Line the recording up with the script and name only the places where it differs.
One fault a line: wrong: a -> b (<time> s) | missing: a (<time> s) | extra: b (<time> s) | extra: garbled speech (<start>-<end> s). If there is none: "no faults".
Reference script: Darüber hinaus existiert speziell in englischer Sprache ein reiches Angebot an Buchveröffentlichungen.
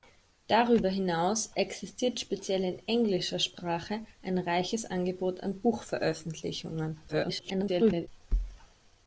extra: garbled speech (7.1-8.1 s)